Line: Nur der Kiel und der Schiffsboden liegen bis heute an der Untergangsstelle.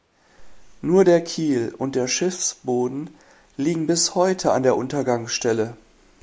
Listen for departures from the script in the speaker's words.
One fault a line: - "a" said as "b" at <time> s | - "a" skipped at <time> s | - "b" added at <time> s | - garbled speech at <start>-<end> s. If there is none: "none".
none